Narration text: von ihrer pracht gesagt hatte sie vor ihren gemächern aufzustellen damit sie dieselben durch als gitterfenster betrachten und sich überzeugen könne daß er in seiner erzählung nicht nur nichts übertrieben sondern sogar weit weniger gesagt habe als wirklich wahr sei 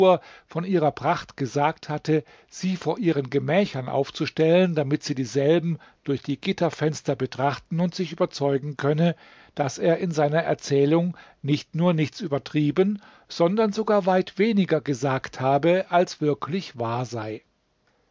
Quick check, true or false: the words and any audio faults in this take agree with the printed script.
false